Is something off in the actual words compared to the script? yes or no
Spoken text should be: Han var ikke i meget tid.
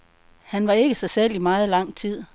yes